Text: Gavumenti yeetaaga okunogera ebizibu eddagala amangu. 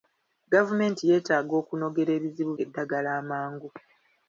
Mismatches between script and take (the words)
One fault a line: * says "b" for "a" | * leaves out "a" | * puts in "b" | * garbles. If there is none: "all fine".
all fine